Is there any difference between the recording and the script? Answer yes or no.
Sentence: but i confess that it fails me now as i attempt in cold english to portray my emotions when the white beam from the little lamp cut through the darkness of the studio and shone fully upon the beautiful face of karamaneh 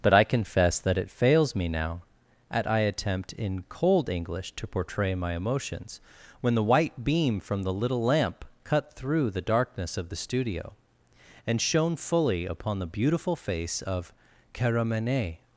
yes